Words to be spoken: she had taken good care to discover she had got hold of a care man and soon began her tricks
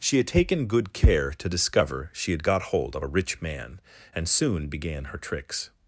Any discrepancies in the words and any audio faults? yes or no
yes